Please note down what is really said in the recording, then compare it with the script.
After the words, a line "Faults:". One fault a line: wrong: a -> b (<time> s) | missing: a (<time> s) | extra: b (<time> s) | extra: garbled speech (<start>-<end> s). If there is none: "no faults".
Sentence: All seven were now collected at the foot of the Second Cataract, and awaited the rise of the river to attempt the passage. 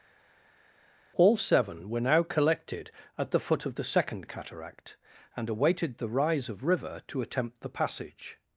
All seven were now collected at the foot of the Second Cataract, and awaited the rise of river to attempt the passage.
Faults:
missing: the (6.6 s)